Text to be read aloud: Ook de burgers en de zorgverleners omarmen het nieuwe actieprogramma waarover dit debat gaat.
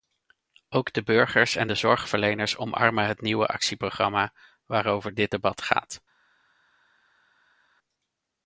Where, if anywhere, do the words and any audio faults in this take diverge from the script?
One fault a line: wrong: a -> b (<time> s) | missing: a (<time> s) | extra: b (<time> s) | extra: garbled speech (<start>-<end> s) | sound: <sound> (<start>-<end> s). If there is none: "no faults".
no faults